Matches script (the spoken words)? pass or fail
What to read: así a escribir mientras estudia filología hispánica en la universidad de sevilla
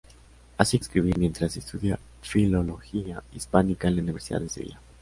pass